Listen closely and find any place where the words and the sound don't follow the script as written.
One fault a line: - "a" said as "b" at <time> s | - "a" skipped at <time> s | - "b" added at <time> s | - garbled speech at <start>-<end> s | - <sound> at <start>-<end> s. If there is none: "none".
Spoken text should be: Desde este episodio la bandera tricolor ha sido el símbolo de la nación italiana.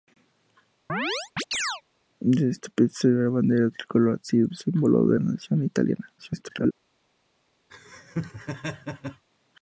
- chirp at 0.9-1.8 s
- "el" skipped at 4.5 s
- "la" skipped at 5.2 s
- garbled speech at 6.2-6.7 s
- laugh at 7.7-9.2 s